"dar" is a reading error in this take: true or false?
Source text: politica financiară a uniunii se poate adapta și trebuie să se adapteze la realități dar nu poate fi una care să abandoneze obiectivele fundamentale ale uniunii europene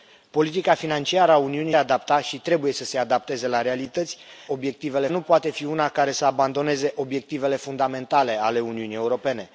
true